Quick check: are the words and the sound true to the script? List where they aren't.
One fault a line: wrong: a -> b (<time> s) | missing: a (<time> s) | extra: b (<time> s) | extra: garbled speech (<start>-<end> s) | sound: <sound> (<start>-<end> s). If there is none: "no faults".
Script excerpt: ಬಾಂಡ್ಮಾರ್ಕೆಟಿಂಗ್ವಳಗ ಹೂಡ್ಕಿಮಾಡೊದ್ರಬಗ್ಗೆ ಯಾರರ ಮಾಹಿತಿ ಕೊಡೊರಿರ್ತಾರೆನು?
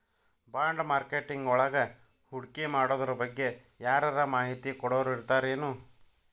no faults